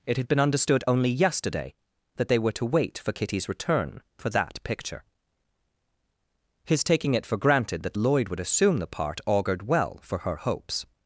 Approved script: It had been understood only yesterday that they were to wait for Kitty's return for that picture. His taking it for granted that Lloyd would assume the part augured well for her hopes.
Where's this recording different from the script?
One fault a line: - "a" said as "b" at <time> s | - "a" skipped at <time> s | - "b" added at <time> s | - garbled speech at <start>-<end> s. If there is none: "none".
none